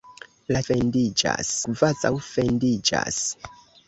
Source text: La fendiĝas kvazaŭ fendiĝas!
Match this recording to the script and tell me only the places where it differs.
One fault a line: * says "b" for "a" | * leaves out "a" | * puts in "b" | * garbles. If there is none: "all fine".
all fine